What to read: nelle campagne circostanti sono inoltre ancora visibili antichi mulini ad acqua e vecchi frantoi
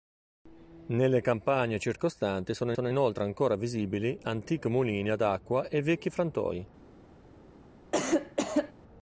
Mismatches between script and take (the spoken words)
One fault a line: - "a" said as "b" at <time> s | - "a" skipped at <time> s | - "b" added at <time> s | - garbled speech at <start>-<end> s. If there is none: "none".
- "sono" added at 2.7 s